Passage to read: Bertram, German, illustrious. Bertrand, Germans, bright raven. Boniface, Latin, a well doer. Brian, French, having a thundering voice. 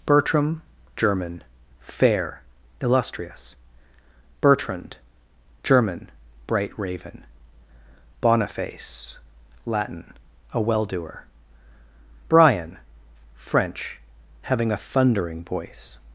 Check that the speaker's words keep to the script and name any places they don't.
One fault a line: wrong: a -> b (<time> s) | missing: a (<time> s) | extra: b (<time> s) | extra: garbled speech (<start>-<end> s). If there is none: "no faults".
extra: fair (1.8 s)
wrong: Germans -> German (5.6 s)